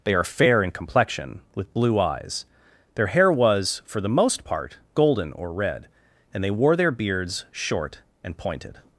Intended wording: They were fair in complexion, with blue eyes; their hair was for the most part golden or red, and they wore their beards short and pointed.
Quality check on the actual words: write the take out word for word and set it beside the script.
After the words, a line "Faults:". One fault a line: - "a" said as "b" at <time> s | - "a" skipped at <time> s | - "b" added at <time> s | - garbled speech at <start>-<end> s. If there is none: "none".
They are fair in complexion, with blue eyes; their hair was for the most part golden or red, and they wore their beards short and pointed.
Faults:
- "were" said as "are" at 0.1 s